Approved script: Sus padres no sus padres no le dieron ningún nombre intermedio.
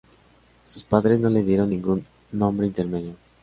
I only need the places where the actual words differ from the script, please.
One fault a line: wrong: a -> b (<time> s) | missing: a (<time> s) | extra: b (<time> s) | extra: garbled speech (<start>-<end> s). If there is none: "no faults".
missing: sus padres no (1.3 s)